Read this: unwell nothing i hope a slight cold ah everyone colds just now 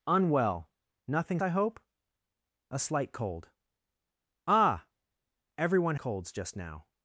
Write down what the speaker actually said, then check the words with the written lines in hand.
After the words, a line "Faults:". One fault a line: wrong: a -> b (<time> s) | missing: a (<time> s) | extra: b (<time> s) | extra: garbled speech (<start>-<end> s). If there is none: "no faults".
unwell nothing i hope a slight cold ah everyone colds just now
Faults:
no faults